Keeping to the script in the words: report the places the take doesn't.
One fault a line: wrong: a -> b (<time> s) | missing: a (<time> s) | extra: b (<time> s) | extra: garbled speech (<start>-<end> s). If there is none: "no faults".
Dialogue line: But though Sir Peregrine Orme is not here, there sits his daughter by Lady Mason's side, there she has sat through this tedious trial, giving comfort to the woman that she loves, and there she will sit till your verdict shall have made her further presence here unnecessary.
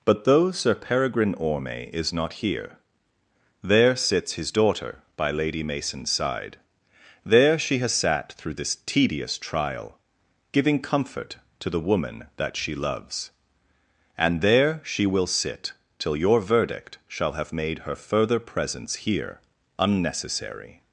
no faults